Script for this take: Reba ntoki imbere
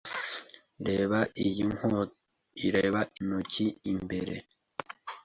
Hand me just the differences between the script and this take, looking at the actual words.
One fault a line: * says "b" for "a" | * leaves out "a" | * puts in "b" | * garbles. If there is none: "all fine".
all fine